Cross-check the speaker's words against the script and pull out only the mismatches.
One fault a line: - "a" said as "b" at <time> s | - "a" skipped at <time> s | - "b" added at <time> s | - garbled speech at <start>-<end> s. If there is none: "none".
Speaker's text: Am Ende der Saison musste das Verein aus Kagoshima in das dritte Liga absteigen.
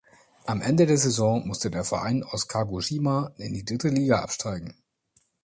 - "das" said as "der" at 1.7 s
- "das" said as "die" at 3.5 s